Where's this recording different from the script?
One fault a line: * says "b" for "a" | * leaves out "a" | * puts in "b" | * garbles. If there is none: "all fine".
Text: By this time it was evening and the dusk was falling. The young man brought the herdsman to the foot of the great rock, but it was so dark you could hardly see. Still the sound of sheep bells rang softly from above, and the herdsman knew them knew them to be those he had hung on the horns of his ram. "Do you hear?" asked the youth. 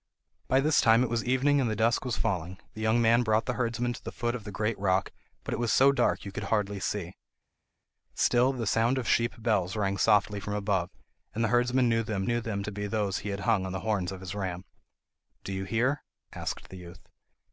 all fine